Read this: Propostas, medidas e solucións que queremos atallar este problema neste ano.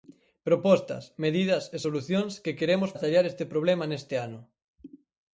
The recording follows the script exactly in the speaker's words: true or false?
true